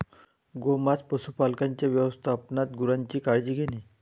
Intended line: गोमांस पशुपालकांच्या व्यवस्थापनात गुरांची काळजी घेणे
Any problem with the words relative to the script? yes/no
no